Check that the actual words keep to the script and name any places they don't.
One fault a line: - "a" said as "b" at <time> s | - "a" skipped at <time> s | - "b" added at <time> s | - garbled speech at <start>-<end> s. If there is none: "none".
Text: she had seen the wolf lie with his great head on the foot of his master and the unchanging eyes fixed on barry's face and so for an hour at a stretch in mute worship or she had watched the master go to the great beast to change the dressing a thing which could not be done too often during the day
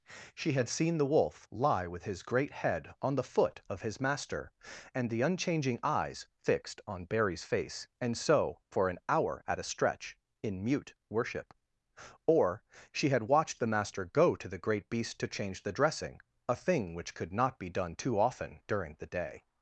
none